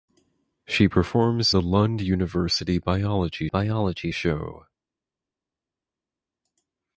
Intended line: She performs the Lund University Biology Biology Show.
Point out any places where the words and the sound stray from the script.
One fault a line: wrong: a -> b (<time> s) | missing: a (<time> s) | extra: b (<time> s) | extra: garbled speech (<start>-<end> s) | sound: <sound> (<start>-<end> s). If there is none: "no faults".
no faults